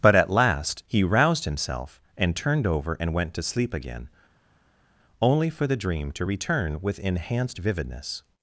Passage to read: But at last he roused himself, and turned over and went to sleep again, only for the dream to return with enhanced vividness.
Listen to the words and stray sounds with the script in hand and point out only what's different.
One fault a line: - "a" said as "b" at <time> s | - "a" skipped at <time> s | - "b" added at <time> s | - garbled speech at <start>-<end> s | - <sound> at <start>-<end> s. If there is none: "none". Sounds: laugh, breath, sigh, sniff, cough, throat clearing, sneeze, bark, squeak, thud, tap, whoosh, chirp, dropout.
none